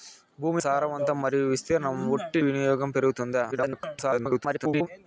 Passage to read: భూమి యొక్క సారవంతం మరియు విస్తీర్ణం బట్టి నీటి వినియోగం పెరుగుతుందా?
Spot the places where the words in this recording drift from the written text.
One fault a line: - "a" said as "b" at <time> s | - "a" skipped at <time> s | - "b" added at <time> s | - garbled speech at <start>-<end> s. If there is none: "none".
- "యొక్క" skipped at 0.6 s
- "నీటి" skipped at 2.4 s
- garbled speech at 3.5-4.9 s